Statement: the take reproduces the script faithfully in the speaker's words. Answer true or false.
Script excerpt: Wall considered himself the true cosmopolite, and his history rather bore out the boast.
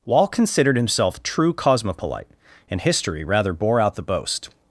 false